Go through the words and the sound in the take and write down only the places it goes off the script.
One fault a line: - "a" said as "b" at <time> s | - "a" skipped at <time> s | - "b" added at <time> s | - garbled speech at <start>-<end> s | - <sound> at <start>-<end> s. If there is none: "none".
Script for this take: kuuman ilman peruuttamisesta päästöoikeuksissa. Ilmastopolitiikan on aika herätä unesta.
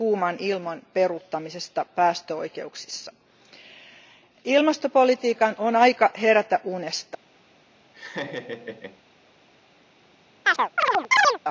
- laugh at 7.9-9.0 s
- chirp at 10.4-11.4 s